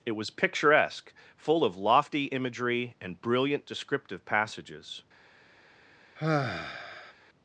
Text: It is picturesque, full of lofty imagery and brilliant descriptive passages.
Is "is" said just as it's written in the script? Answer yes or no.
no